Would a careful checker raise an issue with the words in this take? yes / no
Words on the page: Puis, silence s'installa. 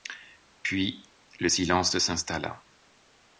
yes